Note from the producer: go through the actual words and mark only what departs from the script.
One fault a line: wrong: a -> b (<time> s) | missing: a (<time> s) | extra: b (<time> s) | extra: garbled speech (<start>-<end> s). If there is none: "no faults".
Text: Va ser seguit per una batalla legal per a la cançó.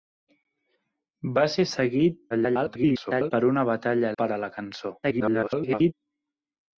extra: garbled speech (2.3-3.3 s)
missing: legal (4.1 s)
extra: garbled speech (5.0-5.9 s)